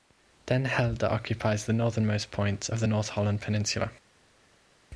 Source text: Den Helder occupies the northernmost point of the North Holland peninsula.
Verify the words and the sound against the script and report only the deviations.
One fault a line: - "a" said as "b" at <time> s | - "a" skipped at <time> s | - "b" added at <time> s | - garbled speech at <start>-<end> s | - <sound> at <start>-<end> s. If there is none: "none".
none